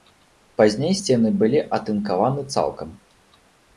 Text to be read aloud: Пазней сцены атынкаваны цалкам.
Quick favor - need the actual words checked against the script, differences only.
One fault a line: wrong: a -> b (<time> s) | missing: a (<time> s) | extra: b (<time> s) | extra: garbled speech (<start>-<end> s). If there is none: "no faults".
extra: былі (1.4 s)